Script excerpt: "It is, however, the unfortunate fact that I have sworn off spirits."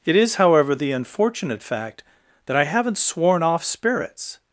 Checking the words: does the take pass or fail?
fail